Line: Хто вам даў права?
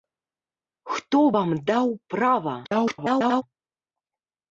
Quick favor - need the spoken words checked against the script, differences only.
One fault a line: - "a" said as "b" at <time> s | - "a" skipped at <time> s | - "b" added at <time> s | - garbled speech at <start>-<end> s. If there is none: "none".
- garbled speech at 2.6-3.4 s